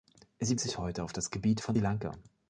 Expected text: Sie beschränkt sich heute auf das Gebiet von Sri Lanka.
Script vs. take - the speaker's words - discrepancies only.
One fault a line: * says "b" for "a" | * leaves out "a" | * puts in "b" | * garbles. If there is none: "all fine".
* leaves out "beschränkt"
* leaves out "Sri"